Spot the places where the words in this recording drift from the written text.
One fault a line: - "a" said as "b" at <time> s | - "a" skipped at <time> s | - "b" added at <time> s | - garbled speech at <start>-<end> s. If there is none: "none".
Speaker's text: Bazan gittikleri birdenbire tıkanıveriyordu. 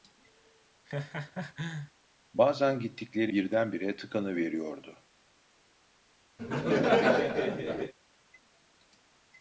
none